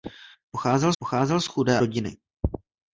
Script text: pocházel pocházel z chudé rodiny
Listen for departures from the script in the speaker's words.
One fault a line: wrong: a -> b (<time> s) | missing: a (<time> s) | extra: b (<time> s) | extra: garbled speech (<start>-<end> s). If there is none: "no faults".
no faults